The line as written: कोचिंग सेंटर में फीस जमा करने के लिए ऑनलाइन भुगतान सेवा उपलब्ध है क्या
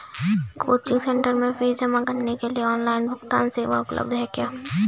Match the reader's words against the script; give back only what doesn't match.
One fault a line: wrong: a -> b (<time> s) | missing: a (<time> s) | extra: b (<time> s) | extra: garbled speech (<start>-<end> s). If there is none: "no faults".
no faults